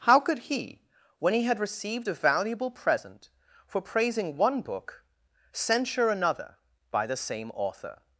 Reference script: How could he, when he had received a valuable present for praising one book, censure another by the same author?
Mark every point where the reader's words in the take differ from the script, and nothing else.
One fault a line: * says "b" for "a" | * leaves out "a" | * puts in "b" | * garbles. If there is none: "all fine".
all fine